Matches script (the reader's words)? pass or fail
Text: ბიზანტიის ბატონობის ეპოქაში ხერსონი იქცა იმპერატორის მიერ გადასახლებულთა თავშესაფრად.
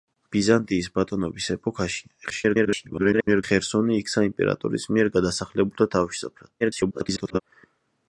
fail